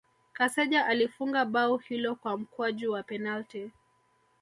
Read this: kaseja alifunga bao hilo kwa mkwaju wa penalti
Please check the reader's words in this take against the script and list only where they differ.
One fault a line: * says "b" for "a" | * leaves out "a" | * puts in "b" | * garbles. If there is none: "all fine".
all fine